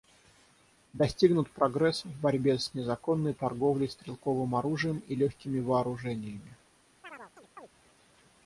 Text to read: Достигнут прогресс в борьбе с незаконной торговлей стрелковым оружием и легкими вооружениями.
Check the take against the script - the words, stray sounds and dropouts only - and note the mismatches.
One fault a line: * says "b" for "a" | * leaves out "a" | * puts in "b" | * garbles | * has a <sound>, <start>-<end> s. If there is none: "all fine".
* has a chirp, 7.0-7.7 s